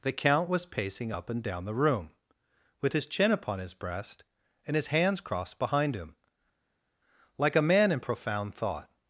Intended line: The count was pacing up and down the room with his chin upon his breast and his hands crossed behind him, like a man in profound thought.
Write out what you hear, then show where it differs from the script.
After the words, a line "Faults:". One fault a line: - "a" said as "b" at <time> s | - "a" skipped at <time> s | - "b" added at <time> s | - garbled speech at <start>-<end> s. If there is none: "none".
The count was pacing up and down the room with his chin upon his breast and his hands crossed behind him, like a man in profound thought.
Faults:
none